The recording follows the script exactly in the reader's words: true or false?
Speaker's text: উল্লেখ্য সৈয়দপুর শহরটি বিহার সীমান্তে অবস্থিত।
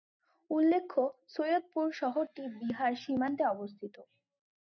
true